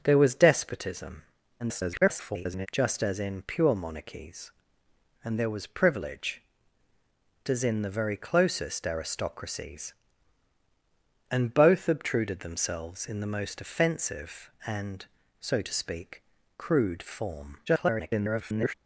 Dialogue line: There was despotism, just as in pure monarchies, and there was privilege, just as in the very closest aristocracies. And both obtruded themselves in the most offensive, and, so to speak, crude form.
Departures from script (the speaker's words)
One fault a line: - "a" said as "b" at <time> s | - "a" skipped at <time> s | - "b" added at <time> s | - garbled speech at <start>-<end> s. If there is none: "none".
- garbled speech at 1.6-2.7 s
- "just" skipped at 6.4 s
- garbled speech at 17.7-18.7 s